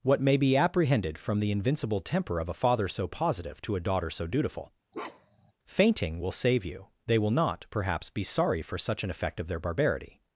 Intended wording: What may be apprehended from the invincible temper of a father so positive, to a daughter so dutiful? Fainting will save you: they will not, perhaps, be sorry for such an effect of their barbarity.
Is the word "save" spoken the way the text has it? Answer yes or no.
yes